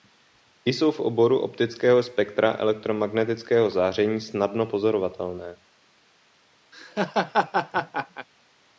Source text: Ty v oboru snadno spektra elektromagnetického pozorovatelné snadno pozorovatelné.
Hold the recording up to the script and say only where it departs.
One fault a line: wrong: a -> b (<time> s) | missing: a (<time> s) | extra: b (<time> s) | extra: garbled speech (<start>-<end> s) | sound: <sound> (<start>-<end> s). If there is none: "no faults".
extra: jsou (0.7 s)
wrong: snadno -> optického (1.4 s)
wrong: pozorovatelné -> záření (3.7 s)
sound: laugh (6.7-8.3 s)